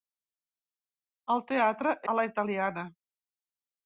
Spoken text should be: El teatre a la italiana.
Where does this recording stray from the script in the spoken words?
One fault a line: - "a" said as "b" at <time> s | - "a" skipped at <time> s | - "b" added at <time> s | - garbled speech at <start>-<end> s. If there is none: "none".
none